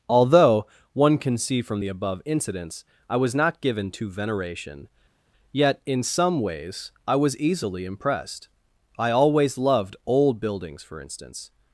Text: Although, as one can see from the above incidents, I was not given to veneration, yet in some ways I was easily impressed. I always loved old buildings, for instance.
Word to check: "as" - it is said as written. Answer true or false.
false